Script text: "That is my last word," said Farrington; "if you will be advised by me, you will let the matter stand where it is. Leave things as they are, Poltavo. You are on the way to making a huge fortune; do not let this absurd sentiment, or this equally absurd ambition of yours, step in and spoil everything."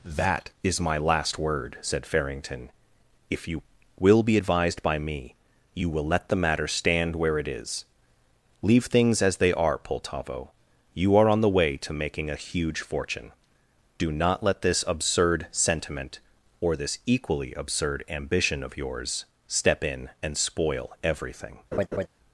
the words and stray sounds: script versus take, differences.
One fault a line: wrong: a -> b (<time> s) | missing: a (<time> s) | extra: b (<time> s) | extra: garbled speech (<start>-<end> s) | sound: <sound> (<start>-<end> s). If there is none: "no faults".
sound: laugh (21.7-22.1 s)